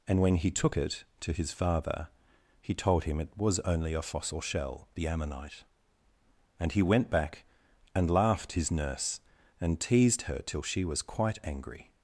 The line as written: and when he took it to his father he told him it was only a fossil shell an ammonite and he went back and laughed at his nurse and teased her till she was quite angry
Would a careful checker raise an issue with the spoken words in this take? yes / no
yes